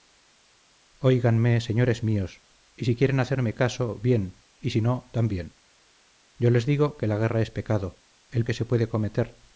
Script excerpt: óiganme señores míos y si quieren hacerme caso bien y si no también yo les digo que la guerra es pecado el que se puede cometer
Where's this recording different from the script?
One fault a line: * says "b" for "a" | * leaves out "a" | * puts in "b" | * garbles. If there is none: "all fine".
all fine